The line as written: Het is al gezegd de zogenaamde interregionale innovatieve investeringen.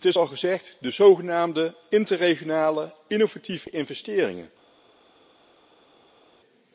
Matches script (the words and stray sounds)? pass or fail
pass